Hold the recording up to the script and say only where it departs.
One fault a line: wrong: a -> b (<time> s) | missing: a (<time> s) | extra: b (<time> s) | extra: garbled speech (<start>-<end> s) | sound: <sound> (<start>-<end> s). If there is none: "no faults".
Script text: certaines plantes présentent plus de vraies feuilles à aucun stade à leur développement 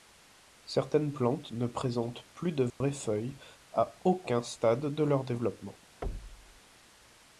extra: ne (1.5 s)
sound: dropout (2.7-2.8 s)
wrong: à -> de (4.9 s)
sound: thud (6.0-6.6 s)